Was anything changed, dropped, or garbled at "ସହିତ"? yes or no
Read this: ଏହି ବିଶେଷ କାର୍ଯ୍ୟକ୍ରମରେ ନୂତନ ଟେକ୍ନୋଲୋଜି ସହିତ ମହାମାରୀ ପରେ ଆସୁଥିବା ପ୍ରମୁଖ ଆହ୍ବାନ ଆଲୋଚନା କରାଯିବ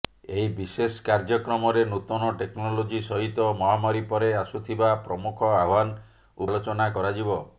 no